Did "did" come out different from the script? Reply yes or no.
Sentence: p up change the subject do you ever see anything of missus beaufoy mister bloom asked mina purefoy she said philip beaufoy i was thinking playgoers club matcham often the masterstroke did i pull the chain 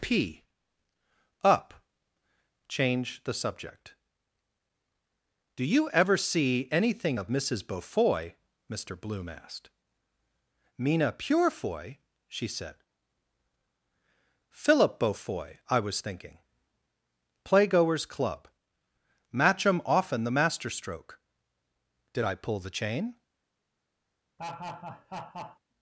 no